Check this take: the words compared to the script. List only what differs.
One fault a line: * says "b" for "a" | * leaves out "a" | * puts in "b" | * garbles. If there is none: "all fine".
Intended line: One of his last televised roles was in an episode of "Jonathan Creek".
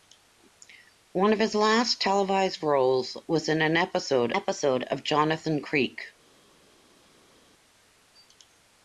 * puts in "episode"